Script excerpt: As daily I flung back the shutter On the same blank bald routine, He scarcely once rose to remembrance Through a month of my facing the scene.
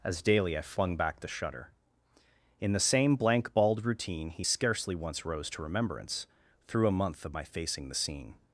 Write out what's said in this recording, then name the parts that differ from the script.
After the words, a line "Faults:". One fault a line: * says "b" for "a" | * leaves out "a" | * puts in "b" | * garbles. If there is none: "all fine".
As daily I flung back the shutter In the same blank bald routine, He scarcely once rose to remembrance Through a month of my facing the scene.
Faults:
* says "In" for "On"